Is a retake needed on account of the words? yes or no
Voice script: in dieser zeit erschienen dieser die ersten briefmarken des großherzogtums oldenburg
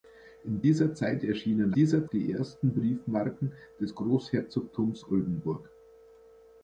no